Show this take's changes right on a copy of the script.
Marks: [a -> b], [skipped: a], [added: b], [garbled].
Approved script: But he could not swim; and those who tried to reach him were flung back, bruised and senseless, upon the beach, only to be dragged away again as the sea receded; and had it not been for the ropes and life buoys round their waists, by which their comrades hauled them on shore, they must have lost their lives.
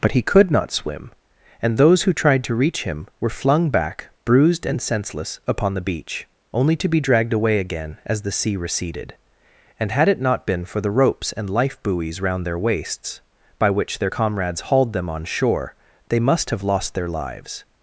But he could not swim; and those who tried to reach him were flung back, bruised and senseless, upon the beach, only to be dragged away again as the sea receded; and had it not been for the ropes and life buoys round their waists, by which their comrades hauled them on shore, they must have lost their lives.